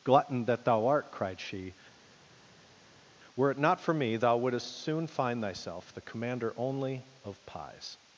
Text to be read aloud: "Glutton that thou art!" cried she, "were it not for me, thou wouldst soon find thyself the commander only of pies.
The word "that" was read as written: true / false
true